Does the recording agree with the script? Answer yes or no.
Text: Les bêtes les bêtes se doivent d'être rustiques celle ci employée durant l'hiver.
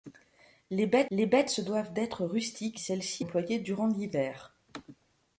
yes